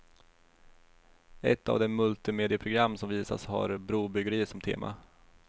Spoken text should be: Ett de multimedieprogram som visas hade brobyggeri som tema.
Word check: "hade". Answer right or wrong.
wrong